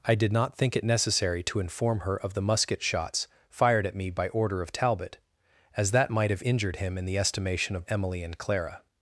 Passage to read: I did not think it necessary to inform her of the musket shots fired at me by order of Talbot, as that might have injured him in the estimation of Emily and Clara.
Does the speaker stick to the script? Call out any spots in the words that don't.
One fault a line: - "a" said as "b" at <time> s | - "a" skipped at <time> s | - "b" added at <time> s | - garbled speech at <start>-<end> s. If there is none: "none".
none